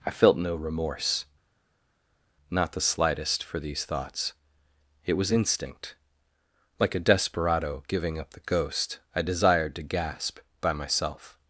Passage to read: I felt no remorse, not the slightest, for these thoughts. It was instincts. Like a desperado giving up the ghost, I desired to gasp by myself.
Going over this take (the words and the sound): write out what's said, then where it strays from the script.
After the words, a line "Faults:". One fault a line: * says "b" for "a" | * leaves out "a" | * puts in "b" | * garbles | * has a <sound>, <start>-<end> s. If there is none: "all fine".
I felt no remorse, not the slightest, for these thoughts. It was instinct. Like a desperado giving up the ghost, I desired to gasp by myself.
Faults:
* says "instinct" for "instincts"